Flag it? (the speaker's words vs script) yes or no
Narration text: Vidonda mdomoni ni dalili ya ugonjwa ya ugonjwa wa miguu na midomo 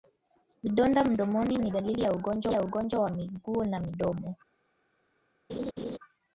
no